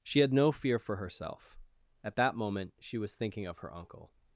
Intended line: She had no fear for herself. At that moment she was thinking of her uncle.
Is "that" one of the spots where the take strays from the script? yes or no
no